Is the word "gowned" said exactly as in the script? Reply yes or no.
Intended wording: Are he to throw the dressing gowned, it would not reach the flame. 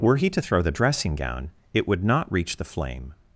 no